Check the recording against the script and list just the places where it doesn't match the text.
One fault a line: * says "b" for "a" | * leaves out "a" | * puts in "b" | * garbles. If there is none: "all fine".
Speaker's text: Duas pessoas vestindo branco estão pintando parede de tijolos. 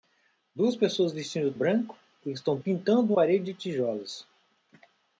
all fine